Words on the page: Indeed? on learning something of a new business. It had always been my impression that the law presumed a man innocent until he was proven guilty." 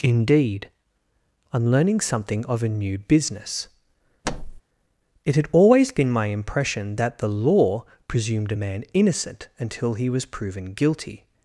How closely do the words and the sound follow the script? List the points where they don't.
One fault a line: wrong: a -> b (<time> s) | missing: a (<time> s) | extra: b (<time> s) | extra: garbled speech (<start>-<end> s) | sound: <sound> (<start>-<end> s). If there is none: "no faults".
sound: thud (4.2-4.6 s)